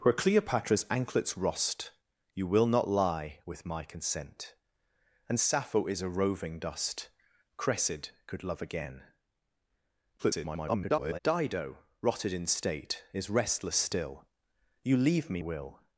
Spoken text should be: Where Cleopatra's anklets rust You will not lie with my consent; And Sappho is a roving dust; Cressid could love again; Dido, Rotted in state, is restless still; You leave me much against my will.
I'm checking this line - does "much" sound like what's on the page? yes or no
no